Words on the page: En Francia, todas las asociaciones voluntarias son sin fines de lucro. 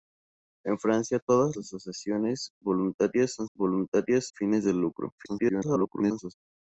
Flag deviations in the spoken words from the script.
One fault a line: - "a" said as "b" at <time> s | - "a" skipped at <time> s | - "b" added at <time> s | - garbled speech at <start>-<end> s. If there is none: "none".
- "las" skipped at 1.6 s
- "sin" said as "voluntarias" at 3.5 s
- garbled speech at 5.2-6.3 s